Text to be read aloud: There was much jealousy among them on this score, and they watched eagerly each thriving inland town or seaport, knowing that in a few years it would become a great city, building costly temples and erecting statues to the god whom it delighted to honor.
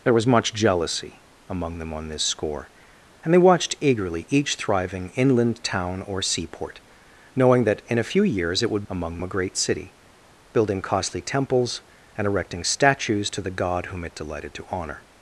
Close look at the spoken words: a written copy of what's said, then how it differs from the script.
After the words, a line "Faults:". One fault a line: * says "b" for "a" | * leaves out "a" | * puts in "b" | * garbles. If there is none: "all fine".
There was much jealousy among them on this score, and they watched eagerly each thriving inland town or seaport, knowing that in a few years it would among a great city, building costly temples and erecting statues to the god whom it delighted to honor.
Faults:
* says "among" for "become"